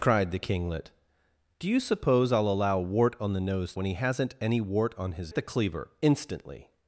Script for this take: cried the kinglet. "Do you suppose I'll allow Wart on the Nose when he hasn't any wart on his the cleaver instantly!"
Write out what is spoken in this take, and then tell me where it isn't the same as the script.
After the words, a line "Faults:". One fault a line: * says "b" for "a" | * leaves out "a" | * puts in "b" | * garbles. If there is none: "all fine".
cried the kinglet. "Do you suppose I'll allow Wart on the Nose when he hasn't any wart on his the cleaver instantly!"
Faults:
all fine